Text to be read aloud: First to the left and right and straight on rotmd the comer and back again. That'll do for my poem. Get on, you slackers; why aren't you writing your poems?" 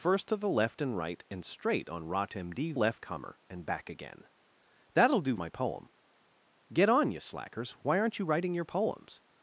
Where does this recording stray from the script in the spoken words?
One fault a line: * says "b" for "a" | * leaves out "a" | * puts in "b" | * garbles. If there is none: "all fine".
* says "left" for "the"
* leaves out "for"